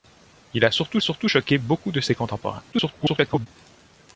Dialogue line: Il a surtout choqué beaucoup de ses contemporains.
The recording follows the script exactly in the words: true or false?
false